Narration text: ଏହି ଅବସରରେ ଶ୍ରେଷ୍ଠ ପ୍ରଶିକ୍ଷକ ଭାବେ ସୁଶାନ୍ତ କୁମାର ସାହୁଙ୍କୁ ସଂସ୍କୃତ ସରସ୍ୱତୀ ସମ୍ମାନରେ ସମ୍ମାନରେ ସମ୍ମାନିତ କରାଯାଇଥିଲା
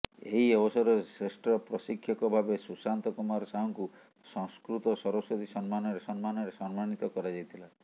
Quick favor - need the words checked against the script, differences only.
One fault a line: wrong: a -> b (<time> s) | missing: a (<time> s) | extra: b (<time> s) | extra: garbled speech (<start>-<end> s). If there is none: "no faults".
no faults